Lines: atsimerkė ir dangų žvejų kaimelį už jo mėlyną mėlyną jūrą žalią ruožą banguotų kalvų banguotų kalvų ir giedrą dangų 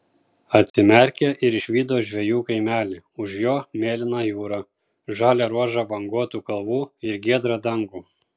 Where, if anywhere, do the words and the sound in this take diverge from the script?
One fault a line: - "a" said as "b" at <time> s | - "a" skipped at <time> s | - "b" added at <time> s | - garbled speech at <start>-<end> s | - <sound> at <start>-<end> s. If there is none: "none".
- dropout at 0.7-0.7 s
- "dangų" said as "išvydo" at 1.5 s
- "mėlyną" skipped at 4.2 s
- "banguotų kalvų" skipped at 6.8 s